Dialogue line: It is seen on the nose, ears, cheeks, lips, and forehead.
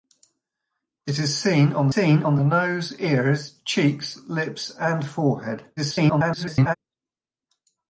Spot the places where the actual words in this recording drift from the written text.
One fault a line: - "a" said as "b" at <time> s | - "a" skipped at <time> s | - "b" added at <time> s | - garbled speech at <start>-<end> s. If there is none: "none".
- "seen on" added at 1.9 s
- garbled speech at 5.8-6.8 s